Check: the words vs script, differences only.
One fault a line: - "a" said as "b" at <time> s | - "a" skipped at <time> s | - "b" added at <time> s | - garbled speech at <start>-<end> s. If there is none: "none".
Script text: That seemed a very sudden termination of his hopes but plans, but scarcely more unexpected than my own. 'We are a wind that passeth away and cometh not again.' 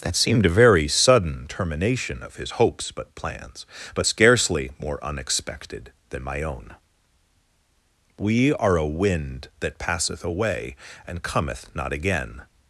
none